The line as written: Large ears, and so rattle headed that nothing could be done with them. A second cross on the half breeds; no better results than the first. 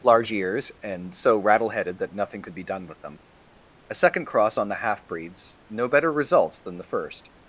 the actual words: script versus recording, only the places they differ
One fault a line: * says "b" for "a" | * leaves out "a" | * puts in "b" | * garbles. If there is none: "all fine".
all fine